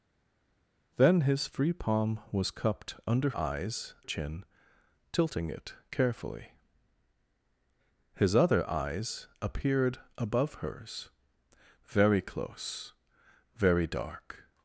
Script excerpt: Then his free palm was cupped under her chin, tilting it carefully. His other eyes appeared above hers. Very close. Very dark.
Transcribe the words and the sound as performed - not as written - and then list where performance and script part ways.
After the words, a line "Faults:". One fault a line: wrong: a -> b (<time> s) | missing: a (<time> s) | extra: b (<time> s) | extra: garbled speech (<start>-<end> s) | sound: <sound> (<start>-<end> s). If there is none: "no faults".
Then his free palm was cupped under eyes chin, tilting it carefully. His other eyes appeared above hers. Very close. Very dark.
Faults:
wrong: her -> eyes (3.4 s)